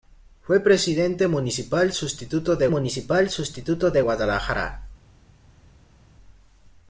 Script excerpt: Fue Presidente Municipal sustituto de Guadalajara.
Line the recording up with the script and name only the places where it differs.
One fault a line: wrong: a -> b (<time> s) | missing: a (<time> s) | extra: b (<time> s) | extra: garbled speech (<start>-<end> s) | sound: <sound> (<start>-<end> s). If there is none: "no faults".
extra: Municipal sustituto de (2.7 s)